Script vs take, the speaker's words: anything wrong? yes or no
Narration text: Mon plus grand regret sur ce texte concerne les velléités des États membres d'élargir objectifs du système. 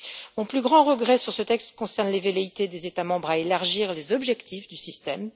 yes